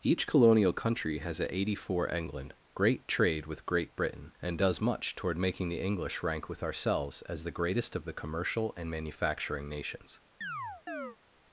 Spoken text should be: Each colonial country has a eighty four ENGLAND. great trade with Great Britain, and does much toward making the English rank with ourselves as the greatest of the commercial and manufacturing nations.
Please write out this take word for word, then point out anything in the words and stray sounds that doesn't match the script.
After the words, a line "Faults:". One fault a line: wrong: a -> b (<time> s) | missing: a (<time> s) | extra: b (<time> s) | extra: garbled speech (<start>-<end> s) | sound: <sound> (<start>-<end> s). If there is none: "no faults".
Each colonial country has a eighty four ENGLAND. great trade with Great Britain, and does much toward making the English rank with ourselves as the greatest of the commercial and manufacturing nations.
Faults:
sound: chirp (10.4-11.2 s)